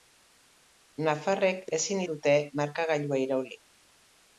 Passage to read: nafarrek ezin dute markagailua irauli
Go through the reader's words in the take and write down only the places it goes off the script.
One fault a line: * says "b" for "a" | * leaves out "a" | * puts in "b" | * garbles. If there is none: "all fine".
all fine